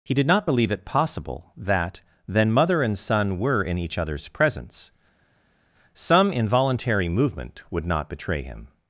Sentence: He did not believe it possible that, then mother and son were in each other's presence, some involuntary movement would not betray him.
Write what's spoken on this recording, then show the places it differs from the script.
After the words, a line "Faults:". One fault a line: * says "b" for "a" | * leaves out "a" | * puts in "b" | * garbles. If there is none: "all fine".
He did not believe it possible that, then mother and son were in each other's presence, some involuntary movement would not betray him.
Faults:
all fine